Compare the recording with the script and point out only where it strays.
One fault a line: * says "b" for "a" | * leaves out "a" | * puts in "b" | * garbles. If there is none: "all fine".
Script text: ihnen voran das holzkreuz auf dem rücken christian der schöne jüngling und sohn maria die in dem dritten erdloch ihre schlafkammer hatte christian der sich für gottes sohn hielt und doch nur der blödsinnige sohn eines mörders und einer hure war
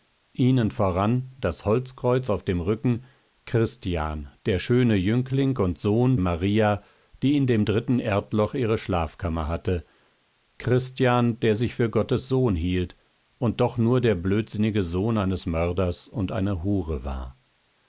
all fine